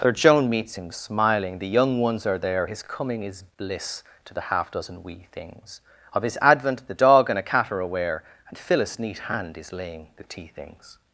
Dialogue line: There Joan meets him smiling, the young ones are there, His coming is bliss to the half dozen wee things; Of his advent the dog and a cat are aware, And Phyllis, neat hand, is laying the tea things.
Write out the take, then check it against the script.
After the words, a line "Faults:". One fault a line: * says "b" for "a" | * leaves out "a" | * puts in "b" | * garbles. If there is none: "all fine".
There Joan meets him smiling, the young ones are there, His coming is bliss to the half dozen wee things; Of his advent the dog and a cat are aware, And Phyllis, neat hand, is laying the tea things.
Faults:
all fine